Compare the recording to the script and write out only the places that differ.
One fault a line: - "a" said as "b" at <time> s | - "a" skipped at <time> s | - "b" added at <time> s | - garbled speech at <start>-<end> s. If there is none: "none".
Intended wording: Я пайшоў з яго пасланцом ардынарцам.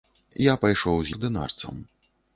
- "яго пасланцом" skipped at 1.1 s